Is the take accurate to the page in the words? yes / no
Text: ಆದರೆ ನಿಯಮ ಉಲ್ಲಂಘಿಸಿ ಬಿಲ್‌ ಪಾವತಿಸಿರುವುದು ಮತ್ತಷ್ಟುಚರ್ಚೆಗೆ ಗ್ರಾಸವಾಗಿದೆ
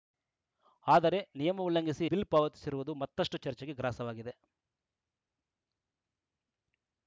yes